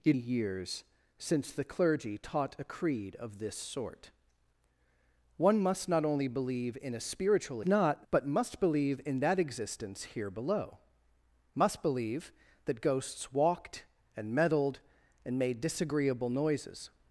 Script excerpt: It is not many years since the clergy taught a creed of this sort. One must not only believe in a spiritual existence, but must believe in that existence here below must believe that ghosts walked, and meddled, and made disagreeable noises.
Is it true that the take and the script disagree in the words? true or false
true